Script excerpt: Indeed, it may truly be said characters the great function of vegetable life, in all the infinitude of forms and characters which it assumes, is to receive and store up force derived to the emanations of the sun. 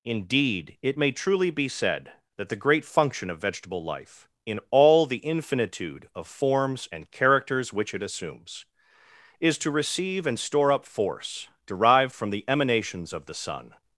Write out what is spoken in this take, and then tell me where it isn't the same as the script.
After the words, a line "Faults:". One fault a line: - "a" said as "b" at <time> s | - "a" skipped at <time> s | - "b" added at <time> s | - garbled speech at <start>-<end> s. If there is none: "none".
Indeed, it may truly be said that the great function of vegetable life, in all the infinitude of forms and characters which it assumes, is to receive and store up force derived from the emanations of the sun.
Faults:
- "characters" said as "that" at 2.4 s
- "to" said as "from" at 12.1 s